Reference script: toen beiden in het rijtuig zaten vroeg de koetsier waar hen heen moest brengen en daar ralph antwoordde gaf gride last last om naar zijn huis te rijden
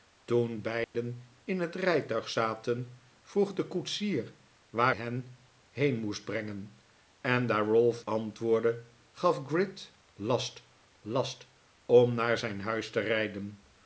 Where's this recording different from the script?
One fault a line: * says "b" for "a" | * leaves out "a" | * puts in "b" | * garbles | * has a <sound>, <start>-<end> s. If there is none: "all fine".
* has a dropout, 0.8-0.9 s